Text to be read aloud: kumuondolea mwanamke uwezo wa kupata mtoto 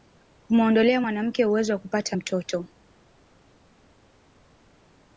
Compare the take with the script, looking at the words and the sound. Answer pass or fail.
pass